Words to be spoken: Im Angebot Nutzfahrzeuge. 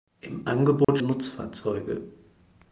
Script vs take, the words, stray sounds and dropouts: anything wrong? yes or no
yes